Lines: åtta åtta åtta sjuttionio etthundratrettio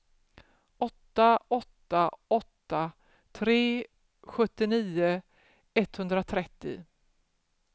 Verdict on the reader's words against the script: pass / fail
fail